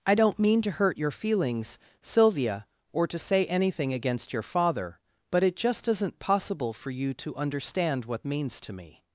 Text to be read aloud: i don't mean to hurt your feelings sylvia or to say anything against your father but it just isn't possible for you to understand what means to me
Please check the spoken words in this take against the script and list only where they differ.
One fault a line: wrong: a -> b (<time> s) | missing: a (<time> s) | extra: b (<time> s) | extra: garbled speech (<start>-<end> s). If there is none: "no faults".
no faults